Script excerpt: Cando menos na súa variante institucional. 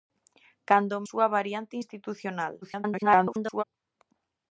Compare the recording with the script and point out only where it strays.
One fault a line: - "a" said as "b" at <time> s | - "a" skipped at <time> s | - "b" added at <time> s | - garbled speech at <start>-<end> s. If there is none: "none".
- "menos na" skipped at 1.0 s
- garbled speech at 2.6-3.6 s